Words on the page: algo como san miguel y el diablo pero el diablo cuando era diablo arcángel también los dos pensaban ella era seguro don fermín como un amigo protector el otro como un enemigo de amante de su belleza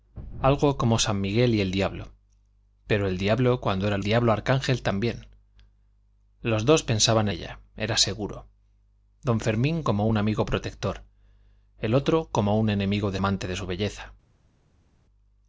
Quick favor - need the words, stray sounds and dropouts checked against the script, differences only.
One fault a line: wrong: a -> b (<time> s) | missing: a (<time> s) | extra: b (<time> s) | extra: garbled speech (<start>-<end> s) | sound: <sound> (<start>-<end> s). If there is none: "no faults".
no faults